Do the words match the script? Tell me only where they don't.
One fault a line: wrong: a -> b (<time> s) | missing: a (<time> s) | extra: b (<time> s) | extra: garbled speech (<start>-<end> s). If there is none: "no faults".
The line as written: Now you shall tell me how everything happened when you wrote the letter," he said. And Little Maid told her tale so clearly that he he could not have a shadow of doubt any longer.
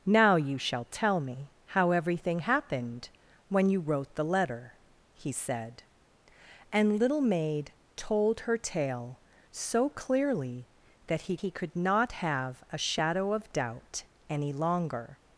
no faults